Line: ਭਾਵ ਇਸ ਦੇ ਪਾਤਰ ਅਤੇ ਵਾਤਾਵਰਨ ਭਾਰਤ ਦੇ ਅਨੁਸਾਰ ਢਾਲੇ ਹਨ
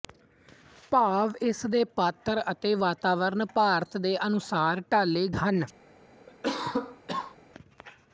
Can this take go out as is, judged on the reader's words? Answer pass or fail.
pass